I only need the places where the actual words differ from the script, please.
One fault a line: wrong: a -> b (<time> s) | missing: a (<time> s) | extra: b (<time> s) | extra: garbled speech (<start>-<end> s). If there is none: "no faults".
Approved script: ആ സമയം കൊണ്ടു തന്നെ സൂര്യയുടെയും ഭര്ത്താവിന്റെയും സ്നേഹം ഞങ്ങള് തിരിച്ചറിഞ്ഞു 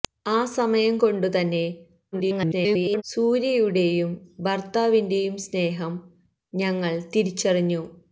extra: garbled speech (2.1-3.0 s)